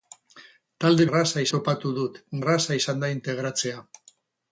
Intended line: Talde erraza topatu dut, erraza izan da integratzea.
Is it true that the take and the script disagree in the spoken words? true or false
false